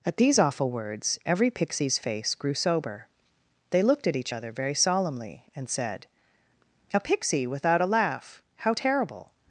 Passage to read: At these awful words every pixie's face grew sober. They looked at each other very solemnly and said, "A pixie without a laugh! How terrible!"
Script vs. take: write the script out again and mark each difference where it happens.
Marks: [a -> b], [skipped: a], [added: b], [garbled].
At these awful words every pixie's face grew sober. They looked at each other very solemnly and said, "A pixie without a laugh! How terrible!"